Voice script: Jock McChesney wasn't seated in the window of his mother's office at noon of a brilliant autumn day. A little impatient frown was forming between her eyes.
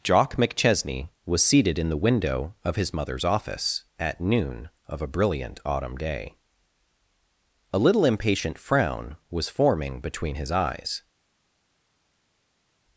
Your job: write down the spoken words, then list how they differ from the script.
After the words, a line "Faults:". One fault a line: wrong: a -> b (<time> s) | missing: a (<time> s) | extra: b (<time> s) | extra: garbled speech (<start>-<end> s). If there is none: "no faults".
Jock McChesney was seated in the window of his mother's office at noon of a brilliant autumn day. A little impatient frown was forming between his eyes.
Faults:
wrong: wasn't -> was (1.3 s)
wrong: her -> his (10.3 s)